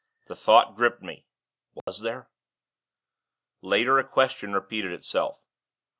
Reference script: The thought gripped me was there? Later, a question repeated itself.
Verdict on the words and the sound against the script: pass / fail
fail